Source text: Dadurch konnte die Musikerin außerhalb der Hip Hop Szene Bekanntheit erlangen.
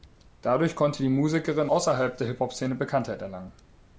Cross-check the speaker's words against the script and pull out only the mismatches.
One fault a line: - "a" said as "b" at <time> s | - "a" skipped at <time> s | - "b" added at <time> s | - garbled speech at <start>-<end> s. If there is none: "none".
none